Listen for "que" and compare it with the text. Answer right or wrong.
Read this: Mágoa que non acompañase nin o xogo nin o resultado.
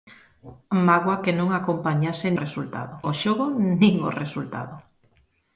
right